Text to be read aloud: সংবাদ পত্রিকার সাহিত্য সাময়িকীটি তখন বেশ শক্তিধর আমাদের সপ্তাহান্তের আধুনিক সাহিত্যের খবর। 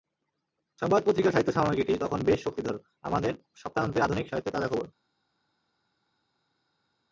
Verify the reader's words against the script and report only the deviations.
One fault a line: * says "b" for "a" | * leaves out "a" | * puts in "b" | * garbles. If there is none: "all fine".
* puts in "তাজা"